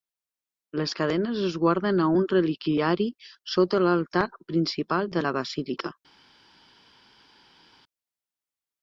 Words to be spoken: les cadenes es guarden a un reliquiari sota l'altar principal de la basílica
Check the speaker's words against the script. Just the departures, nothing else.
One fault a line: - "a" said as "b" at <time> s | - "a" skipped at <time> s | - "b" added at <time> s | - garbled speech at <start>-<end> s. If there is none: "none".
none